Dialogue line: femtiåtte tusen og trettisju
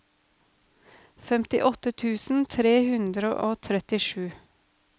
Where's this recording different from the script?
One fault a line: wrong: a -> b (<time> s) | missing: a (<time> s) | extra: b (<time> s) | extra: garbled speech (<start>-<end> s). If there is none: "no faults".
extra: tre hundre (2.5 s)